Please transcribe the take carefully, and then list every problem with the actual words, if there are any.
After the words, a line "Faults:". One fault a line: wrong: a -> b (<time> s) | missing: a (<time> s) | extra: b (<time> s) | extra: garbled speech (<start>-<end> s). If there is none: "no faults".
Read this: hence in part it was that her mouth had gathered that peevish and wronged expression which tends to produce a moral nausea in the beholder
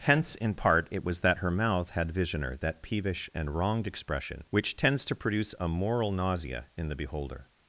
hence in part it was that her mouth had visioner that peevish and wronged expression which tends to produce a moral nausea in the beholder
Faults:
wrong: gathered -> visioner (2.1 s)